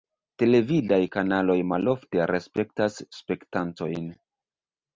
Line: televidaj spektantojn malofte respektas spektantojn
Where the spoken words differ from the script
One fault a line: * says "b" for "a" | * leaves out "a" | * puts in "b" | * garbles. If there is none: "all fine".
* says "kanaloj" for "spektantojn"